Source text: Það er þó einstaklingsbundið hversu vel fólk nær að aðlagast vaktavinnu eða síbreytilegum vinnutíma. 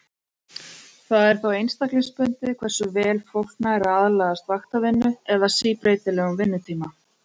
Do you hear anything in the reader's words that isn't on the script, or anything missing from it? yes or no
no